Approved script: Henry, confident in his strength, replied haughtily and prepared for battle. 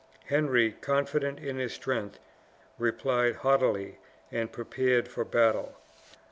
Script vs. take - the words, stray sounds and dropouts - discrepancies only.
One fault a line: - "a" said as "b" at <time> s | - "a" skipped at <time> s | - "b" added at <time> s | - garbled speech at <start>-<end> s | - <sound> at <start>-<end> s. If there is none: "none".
none